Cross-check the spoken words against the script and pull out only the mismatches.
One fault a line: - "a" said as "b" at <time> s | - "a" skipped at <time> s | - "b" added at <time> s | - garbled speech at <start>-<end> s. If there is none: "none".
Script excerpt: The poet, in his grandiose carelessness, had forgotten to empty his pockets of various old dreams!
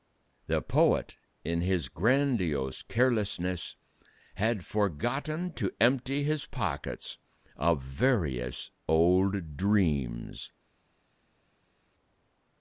none